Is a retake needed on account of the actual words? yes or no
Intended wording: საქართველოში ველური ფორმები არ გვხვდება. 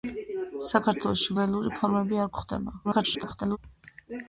yes